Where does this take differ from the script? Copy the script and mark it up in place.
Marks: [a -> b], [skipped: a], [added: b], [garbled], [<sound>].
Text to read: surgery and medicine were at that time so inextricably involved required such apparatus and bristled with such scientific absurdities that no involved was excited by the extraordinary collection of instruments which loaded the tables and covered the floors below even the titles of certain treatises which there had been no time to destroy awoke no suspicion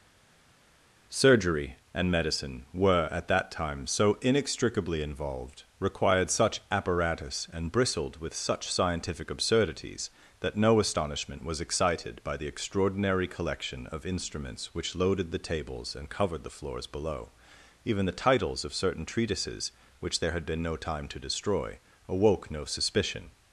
surgery and medicine were at that time so inextricably involved required such apparatus and bristled with such scientific absurdities that no [involved -> astonishment] was excited by the extraordinary collection of instruments which loaded the tables and covered the floors below even the titles of certain treatises which there had been no time to destroy awoke no suspicion